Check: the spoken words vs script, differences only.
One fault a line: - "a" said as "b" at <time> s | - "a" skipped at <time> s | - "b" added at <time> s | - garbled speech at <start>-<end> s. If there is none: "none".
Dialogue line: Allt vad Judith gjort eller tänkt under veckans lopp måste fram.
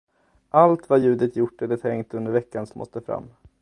- "lopp" skipped at 2.7 s